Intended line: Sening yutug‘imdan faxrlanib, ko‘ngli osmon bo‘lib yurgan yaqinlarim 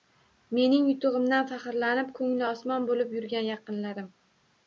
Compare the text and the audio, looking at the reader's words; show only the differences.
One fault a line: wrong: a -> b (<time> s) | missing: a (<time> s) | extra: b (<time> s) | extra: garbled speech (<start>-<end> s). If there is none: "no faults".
wrong: Sening -> Mening (0.6 s)